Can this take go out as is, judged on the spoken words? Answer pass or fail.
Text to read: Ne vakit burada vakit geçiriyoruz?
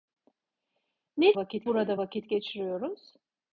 pass